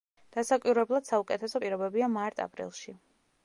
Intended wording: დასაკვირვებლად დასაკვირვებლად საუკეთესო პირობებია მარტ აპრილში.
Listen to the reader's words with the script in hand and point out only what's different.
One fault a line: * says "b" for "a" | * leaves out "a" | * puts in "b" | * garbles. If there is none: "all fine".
* leaves out "დასაკვირვებლად"